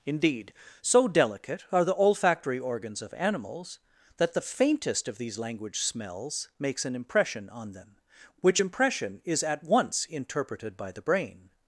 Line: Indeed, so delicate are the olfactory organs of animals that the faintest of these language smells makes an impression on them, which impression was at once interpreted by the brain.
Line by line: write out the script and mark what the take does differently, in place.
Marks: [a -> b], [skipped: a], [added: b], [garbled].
Indeed, so delicate are the olfactory organs of animals that the faintest of these language smells makes an impression on them, which impression [was -> is] at once interpreted by the brain.